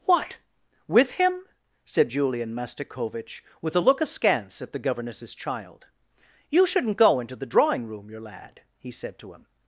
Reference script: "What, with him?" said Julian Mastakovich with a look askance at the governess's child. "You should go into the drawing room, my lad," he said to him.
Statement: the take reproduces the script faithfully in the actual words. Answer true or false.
false